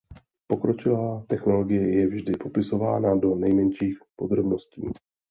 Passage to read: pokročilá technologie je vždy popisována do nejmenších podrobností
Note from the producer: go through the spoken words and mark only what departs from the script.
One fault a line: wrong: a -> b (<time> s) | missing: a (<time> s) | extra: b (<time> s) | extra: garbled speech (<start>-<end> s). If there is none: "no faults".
no faults